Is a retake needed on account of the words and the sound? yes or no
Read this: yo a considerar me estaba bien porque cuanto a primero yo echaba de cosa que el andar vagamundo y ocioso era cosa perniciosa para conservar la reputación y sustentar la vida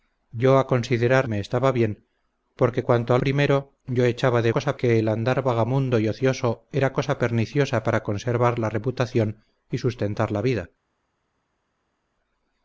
no